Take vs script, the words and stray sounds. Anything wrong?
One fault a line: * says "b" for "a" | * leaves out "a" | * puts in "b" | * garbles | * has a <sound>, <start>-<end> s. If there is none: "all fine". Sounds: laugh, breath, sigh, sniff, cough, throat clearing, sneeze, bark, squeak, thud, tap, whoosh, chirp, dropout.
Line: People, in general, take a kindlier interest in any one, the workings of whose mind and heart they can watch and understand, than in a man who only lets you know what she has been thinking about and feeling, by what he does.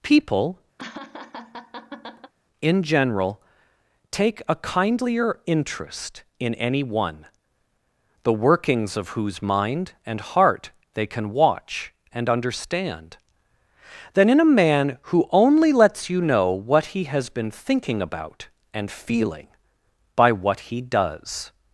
* has a laugh, 0.8-2.3 s
* says "he" for "she"